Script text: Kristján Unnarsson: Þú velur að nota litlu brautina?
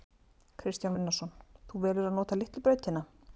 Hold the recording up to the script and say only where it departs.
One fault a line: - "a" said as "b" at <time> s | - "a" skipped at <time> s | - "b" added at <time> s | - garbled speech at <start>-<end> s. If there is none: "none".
none